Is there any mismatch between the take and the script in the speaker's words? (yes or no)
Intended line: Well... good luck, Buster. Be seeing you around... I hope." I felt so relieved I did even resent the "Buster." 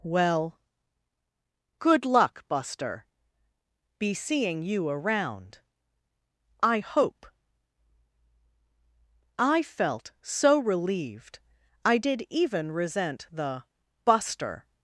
no